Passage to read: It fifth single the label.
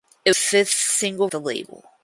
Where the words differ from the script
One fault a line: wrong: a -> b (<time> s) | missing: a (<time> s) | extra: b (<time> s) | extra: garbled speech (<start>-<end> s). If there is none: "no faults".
no faults